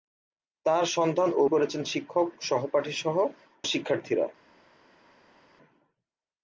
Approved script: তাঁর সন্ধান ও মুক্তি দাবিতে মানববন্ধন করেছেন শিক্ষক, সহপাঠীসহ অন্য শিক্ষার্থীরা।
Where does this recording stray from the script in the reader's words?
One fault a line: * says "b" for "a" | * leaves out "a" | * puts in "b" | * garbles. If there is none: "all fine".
* leaves out "মুক্তি দাবিতে মানববন্ধন"
* leaves out "অন্য"